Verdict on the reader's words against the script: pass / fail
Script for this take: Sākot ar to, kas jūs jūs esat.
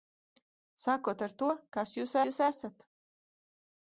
pass